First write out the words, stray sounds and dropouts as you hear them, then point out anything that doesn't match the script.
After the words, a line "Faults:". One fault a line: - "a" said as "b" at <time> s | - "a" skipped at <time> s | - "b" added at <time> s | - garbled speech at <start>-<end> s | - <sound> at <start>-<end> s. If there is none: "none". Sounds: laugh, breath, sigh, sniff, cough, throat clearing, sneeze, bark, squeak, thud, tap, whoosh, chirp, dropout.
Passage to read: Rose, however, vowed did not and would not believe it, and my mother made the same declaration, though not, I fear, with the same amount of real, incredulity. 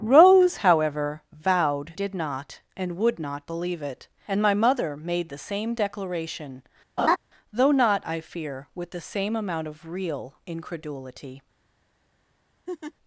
Rose, however, vowed did not and would not believe it, and my mother made the same declaration, though not, I fear, with the same amount of real, incredulity.
Faults:
- laugh at 7.0-7.2 s
- laugh at 12.7-12.9 s